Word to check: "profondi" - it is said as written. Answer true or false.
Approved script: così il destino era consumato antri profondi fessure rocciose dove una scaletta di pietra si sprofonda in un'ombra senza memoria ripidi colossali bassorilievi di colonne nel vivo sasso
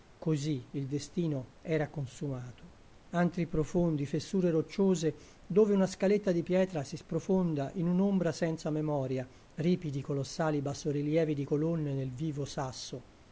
true